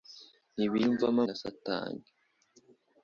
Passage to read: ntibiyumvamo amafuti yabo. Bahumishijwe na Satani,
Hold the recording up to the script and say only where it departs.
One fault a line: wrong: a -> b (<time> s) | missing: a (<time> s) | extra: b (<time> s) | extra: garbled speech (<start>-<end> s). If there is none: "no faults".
missing: amafuti yabo Bahumishijwe (1.2 s)